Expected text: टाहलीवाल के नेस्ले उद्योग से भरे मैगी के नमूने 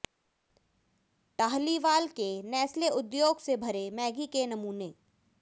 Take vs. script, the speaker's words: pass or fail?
pass